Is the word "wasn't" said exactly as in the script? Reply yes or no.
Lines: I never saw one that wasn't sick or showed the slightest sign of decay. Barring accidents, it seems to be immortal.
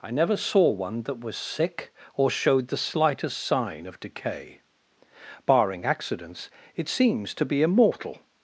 no